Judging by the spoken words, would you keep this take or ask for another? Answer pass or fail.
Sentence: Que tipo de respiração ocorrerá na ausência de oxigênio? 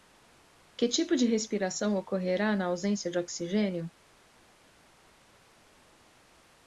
pass